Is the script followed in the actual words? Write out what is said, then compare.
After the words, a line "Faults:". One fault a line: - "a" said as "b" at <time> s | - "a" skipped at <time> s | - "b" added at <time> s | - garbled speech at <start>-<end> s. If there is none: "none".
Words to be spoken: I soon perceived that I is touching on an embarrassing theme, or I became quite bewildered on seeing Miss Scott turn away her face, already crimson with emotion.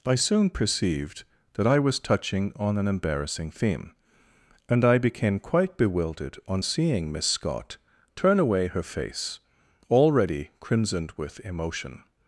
I soon perceived that I was touching on an embarrassing theme, and I became quite bewildered on seeing Miss Scott turn away her face, already crimsoned with emotion.
Faults:
- "is" said as "was" at 1.8 s
- "or" said as "and" at 4.7 s
- "crimson" said as "crimsoned" at 10.6 s